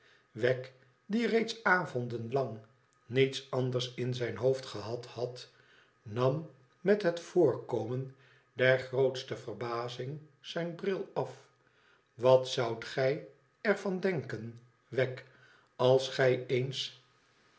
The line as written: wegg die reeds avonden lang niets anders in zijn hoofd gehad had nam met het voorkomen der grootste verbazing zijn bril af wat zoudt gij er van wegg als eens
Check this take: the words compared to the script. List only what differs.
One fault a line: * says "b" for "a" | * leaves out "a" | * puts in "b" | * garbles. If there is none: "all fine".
* puts in "denken"
* puts in "gij"